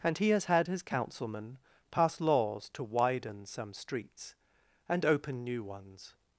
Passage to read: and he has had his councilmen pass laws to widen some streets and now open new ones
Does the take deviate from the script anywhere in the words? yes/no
yes